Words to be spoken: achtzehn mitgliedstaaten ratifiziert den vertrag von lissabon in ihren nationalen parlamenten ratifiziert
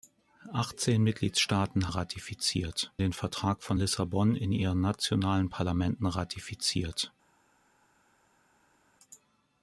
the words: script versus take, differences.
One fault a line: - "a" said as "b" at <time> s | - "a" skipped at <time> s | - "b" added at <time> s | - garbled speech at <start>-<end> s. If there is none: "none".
none